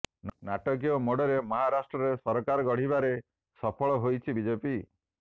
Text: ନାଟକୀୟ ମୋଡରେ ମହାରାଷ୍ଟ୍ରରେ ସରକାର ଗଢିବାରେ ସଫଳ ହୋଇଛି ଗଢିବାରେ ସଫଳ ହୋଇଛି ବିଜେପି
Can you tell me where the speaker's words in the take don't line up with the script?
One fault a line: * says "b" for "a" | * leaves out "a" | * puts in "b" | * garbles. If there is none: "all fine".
* leaves out "ଗଢିବାରେ ସଫଳ ହୋଇଛି"